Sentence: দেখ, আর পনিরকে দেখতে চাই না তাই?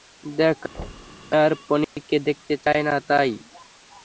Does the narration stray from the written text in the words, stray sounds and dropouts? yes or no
yes